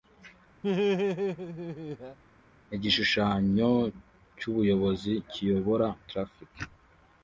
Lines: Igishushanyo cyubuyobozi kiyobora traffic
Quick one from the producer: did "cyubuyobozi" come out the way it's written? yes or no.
yes